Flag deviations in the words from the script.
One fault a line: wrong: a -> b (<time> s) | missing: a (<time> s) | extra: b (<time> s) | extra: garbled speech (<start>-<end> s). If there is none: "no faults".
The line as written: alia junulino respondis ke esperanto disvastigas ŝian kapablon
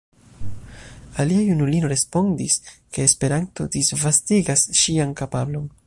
no faults